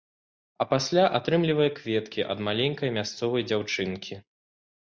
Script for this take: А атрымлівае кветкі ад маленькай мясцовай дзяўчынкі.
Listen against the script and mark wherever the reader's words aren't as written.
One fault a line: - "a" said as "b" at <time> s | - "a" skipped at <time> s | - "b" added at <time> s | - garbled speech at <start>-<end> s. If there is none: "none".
- "пасля" added at 0.7 s